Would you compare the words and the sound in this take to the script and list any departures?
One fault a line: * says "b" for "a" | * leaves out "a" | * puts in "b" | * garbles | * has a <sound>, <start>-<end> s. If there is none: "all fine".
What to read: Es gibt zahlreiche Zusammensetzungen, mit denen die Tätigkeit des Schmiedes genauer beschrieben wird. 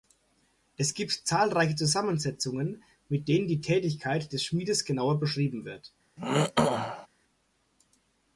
* has a throat clearing, 6.2-7.1 s